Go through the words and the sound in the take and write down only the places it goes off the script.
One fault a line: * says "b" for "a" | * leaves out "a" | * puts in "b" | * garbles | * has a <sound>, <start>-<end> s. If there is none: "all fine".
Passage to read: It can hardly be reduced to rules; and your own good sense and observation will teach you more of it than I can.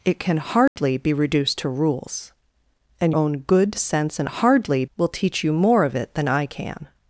* has a dropout, 0.7-0.8 s
* leaves out "your"
* says "hardly" for "observation"